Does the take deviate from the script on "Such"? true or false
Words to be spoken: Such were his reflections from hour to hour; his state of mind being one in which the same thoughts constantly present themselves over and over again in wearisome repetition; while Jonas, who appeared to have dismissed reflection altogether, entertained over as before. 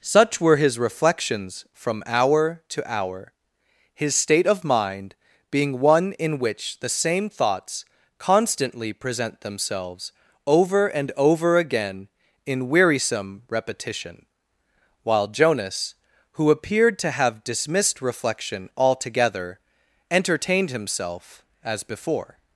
false